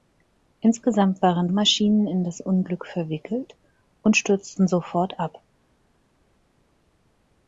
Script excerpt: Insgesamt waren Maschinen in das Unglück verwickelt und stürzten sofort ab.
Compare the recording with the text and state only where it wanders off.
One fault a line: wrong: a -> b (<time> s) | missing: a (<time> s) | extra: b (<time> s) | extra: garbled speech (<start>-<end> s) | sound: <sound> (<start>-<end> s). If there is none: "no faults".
no faults